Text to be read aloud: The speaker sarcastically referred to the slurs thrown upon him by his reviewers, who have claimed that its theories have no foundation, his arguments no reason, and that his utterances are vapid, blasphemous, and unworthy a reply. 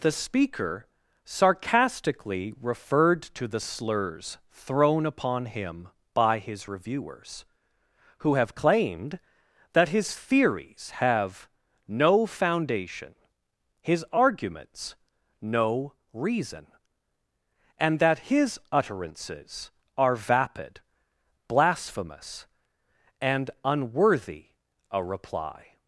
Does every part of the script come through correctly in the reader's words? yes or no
no